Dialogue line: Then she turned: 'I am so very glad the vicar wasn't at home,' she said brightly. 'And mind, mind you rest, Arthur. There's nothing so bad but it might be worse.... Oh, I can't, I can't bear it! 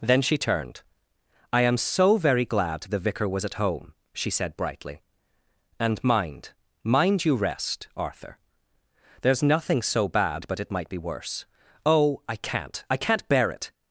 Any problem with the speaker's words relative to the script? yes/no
yes